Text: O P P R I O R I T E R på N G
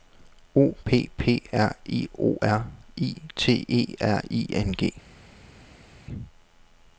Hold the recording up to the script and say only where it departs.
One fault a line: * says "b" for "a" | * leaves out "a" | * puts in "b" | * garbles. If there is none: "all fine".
* says "I" for "på"